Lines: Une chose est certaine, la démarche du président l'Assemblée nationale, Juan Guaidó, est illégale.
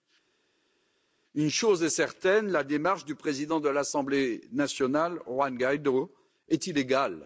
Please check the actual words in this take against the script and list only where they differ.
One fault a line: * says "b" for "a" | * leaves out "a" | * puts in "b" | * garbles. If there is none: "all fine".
* puts in "de"